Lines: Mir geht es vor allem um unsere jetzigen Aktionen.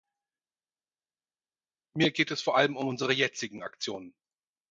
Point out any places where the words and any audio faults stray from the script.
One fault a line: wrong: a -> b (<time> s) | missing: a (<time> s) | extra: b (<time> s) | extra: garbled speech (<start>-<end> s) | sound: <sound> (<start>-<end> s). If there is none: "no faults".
no faults